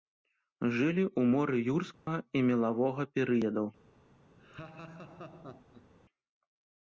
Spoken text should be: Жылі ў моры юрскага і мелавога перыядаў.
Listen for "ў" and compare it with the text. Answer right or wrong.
right